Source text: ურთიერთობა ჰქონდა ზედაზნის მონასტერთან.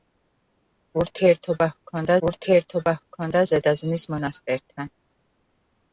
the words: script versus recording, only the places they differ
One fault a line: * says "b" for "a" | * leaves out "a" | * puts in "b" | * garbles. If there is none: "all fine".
* puts in "ურთიერთობა ჰქონდა"